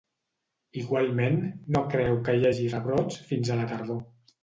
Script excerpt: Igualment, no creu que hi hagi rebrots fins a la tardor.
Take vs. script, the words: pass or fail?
pass